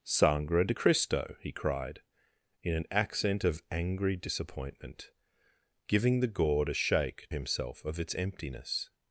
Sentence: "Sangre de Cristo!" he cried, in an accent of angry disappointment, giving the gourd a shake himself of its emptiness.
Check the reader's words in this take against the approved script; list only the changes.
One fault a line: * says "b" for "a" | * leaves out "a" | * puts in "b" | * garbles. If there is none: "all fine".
all fine